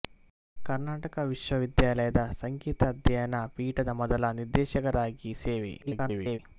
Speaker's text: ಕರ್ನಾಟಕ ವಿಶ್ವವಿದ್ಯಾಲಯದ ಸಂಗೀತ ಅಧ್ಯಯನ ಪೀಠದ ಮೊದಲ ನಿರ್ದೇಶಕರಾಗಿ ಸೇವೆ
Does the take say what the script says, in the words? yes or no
no